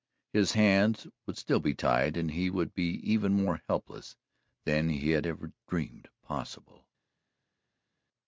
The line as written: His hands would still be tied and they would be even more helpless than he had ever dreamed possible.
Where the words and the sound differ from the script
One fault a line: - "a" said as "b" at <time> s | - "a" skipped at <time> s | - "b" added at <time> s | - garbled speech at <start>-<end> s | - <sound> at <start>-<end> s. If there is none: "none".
- "they" said as "he" at 2.3 s